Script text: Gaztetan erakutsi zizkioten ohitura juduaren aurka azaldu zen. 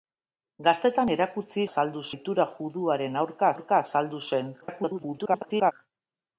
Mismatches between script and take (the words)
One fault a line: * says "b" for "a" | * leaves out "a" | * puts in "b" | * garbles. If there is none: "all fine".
* says "azaldu" for "zizkioten"
* puts in "aurka"
* garbles